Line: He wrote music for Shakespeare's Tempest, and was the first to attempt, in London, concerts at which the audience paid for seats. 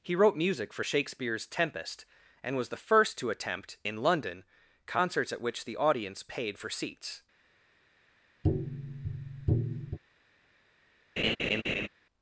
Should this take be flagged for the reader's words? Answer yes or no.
no